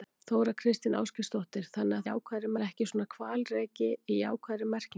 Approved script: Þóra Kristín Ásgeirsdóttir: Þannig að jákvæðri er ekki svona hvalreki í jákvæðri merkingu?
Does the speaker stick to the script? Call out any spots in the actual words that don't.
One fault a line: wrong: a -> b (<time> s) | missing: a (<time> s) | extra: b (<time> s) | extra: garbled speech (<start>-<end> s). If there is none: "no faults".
no faults